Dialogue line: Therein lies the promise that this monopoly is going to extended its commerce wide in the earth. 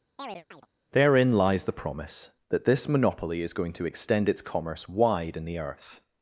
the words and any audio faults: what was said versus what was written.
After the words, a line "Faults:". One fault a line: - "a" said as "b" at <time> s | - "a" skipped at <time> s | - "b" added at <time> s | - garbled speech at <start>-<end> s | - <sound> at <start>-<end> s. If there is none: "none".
Therein lies the promise that this monopoly is going to extend its commerce wide in the earth.
Faults:
- chirp at 0.2-0.7 s
- "extended" said as "extend" at 3.8 s